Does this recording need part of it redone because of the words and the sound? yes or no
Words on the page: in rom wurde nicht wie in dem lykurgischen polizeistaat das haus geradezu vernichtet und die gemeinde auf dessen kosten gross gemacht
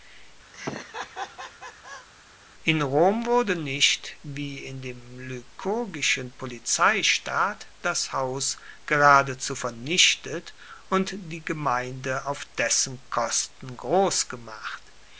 yes